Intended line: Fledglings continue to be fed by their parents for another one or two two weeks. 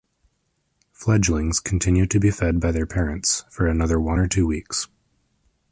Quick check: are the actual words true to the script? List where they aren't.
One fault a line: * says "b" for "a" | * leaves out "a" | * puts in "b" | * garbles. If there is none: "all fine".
* leaves out "two"